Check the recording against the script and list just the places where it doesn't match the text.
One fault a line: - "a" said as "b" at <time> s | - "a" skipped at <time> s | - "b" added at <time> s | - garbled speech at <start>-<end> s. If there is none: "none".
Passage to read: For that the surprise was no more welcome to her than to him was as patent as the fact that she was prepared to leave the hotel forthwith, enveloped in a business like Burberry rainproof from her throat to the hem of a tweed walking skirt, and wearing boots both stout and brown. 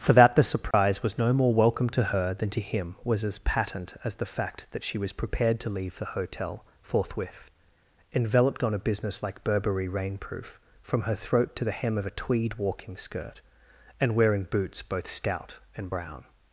- "in" said as "on" at 8.6 s